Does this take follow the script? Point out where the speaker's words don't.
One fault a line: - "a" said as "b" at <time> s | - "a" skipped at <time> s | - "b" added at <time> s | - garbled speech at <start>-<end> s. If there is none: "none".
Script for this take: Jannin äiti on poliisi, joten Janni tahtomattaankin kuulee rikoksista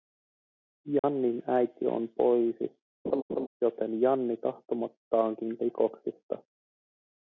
- "kuulee" skipped at 5.6 s